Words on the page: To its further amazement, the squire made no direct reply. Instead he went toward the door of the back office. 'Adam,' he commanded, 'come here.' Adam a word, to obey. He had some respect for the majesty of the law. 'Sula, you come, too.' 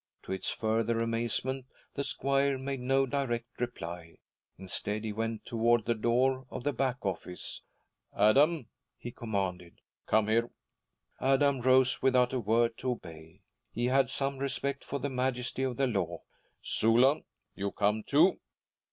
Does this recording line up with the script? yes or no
no